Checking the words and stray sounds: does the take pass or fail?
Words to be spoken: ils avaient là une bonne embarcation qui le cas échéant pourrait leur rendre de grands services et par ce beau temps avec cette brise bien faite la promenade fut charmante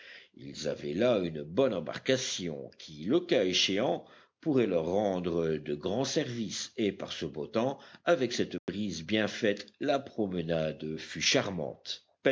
fail